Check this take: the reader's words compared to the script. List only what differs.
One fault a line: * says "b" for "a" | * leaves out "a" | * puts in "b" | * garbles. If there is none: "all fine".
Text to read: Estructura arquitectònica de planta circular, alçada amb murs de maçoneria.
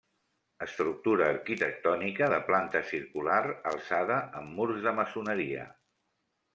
all fine